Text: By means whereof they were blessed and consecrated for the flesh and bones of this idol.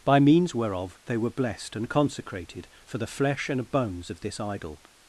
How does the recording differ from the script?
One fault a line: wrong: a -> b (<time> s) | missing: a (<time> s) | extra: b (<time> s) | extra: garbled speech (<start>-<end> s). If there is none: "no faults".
no faults